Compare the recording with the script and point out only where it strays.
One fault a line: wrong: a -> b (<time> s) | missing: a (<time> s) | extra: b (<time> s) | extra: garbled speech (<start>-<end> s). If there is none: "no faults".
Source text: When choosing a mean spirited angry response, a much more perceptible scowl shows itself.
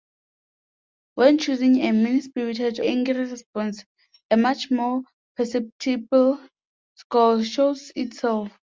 no faults